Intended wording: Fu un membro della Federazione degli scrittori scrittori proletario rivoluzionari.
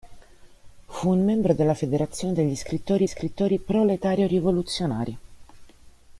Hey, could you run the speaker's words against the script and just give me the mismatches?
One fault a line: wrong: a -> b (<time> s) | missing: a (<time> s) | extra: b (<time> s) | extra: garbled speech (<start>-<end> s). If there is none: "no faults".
no faults